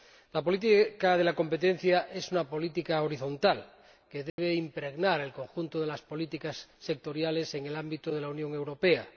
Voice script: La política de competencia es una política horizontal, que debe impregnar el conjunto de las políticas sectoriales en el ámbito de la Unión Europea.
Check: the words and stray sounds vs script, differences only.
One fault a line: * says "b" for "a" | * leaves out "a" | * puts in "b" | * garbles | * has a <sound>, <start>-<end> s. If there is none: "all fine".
* has a dropout, 4.3-4.4 s